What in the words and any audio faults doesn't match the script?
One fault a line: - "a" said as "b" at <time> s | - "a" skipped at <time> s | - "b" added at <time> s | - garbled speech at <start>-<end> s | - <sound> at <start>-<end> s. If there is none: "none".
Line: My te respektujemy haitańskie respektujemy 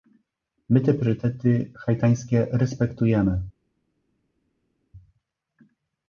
- "respektujemy" said as "priorytety" at 0.9 s